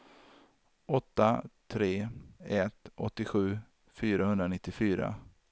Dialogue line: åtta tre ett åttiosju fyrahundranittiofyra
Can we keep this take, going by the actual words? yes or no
yes